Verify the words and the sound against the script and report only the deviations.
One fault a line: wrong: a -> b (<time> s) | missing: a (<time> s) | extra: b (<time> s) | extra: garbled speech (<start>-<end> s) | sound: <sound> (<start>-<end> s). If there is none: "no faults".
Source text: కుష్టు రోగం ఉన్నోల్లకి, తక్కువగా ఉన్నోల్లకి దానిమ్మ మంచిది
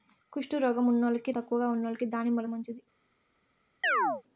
sound: chirp (3.8-4.2 s)